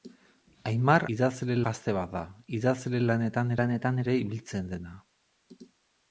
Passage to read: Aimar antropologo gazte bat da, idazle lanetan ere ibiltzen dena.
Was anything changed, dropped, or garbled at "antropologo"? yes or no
yes